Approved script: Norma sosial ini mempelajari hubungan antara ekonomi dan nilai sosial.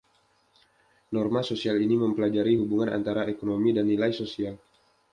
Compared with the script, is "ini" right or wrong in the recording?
right